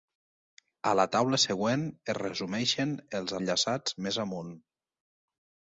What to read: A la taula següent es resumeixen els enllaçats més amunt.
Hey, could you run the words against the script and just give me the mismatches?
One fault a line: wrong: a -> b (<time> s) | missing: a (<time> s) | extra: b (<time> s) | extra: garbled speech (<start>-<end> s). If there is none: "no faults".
no faults